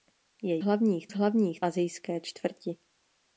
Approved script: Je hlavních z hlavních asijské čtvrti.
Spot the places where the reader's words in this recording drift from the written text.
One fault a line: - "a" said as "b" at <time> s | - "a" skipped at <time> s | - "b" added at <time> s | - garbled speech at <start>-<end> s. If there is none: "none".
none